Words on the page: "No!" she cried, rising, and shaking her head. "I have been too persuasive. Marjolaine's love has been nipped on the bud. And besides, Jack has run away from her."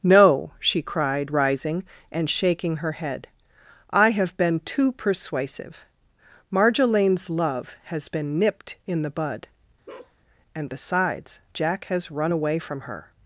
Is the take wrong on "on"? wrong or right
wrong